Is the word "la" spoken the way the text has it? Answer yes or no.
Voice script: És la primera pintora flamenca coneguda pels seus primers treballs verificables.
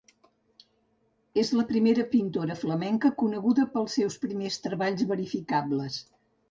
yes